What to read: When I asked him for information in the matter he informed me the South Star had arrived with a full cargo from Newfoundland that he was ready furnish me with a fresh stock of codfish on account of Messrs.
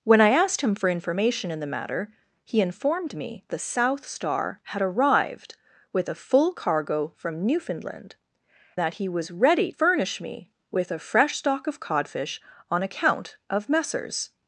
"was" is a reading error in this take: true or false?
false